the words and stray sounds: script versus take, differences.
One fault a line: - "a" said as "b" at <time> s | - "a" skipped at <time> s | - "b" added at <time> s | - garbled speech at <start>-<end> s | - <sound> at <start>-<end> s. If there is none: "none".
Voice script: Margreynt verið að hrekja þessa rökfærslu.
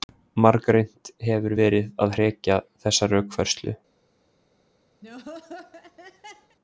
- "hefur" added at 1.3 s
- laugh at 5.0-6.6 s